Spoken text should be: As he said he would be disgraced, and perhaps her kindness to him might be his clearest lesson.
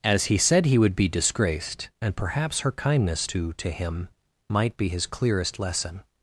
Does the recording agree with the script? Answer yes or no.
no